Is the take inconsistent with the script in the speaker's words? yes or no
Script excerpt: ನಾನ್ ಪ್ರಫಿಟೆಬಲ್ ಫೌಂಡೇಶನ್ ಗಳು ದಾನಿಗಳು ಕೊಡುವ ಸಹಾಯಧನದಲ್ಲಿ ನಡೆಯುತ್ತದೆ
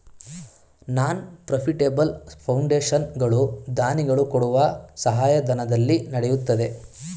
no